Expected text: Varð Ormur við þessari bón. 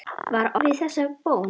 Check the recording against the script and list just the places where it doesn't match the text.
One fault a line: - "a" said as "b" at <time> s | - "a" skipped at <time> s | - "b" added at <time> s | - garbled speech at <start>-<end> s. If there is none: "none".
- "Ormur" skipped at 0.6 s